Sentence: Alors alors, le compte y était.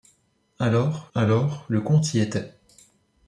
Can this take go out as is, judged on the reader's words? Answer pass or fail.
pass